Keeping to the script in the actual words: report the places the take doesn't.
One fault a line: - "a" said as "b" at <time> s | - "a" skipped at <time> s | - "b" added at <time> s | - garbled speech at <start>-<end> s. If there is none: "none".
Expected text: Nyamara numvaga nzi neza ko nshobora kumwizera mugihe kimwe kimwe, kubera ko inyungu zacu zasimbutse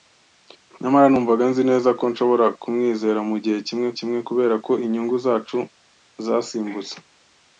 none